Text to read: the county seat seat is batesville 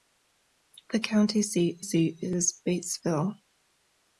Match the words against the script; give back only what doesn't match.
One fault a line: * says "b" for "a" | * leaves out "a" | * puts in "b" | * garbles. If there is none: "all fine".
all fine